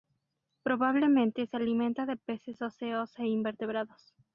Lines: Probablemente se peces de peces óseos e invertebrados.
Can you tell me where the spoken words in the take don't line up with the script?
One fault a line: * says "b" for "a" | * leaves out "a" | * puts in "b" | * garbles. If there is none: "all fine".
* says "alimenta" for "peces"